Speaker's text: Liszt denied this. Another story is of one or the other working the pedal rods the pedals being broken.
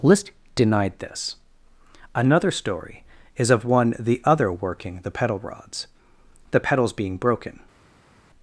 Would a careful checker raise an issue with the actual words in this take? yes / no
yes